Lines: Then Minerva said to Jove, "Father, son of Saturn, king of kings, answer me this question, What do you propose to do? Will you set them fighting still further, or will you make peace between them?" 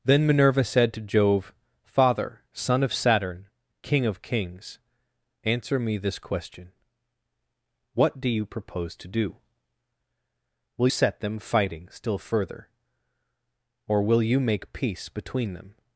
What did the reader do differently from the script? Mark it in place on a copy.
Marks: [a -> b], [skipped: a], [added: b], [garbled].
Then Minerva said to Jove, "Father, son of Saturn, king of kings, answer me this question, What do you propose to do? Will [skipped: you] set them fighting still further, or will you make peace between them?"